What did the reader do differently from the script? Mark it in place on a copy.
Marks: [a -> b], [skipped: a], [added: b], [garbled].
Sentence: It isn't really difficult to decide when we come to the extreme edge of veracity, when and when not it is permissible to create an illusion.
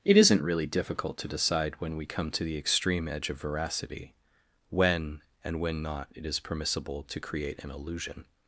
It isn't really difficult to decide when we come to the extreme edge of veracity, when and when not it is permissible to create an illusion.